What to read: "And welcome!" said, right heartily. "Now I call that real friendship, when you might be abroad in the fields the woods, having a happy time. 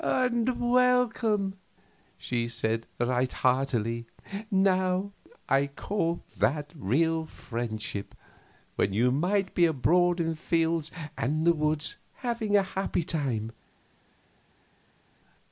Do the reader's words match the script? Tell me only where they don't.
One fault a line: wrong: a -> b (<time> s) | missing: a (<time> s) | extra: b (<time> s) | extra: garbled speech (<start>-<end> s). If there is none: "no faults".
extra: she (2.2 s)
extra: and (11.2 s)